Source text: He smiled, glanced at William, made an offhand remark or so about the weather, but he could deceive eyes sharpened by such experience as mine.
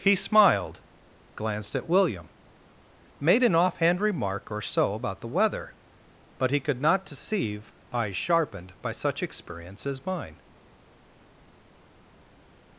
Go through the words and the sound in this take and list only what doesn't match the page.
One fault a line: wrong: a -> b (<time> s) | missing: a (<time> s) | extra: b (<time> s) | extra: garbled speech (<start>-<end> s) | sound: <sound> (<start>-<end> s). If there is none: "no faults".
extra: not (6.8 s)